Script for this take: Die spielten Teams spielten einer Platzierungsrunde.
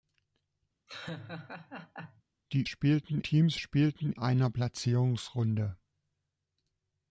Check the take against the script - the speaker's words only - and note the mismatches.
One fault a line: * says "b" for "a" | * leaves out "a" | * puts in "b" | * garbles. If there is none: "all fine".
all fine